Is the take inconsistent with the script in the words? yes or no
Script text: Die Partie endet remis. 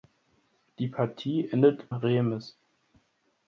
no